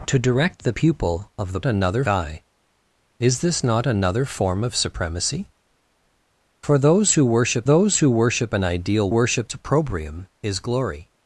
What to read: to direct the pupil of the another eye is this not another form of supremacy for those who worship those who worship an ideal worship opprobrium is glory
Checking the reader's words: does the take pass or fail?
pass